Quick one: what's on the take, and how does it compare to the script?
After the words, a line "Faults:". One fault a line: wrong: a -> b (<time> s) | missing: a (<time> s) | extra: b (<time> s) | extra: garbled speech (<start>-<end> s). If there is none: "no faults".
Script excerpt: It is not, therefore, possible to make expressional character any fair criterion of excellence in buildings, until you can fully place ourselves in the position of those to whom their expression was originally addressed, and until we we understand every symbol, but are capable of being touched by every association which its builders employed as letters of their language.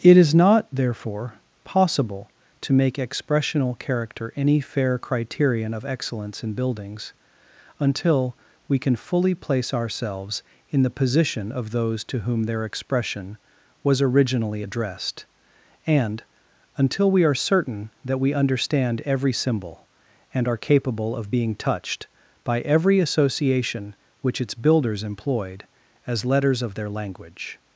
It is not, therefore, possible to make expressional character any fair criterion of excellence in buildings, until we can fully place ourselves in the position of those to whom their expression was originally addressed, and until we are certain that we understand every symbol, and are capable of being touched by every association which its builders employed as letters of their language.
Faults:
wrong: you -> we (8.7 s)
extra: are certain that (17.2 s)
wrong: but -> and (20.3 s)